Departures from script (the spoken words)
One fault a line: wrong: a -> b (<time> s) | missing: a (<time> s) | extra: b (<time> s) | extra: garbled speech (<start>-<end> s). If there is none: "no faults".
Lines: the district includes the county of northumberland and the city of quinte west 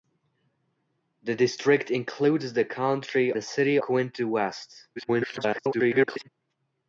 missing: of northumberland and (3.3 s)
missing: of (3.8 s)
extra: garbled speech (5.0-6.3 s)